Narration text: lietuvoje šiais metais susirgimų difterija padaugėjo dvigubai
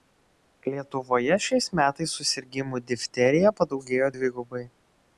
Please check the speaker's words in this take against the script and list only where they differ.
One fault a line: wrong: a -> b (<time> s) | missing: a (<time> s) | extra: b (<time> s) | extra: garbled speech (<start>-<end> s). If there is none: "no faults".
no faults